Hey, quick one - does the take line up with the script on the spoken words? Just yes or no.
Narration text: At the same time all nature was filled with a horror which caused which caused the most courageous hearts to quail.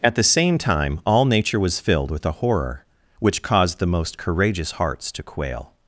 no